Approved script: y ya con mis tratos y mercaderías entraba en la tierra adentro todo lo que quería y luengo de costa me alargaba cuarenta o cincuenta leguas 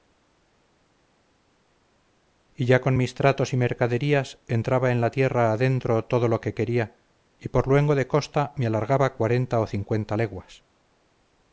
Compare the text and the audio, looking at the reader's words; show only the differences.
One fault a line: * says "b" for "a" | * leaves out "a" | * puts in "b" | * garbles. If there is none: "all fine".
* puts in "por"